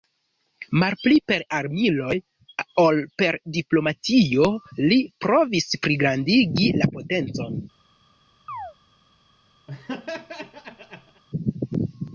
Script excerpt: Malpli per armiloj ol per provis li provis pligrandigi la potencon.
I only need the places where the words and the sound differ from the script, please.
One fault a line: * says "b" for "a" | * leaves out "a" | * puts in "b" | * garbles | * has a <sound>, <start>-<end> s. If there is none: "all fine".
* says "diplomatio" for "provis"
* has a chirp, 8.5-8.7 s
* has a laugh, 9.7-11.2 s